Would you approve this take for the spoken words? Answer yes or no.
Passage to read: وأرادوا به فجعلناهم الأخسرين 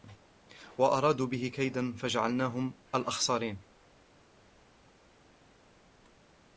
no